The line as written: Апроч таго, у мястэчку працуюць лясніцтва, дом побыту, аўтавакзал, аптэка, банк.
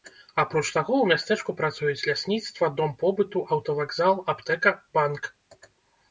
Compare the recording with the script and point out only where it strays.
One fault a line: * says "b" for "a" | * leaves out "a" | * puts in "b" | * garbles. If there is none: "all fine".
all fine